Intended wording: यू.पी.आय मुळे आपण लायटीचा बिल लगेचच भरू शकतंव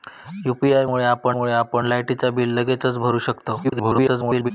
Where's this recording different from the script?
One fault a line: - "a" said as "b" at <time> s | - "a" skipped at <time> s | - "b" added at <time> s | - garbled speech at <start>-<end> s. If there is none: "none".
- "मुळे आपण" added at 1.3 s
- garbled speech at 3.6-4.5 s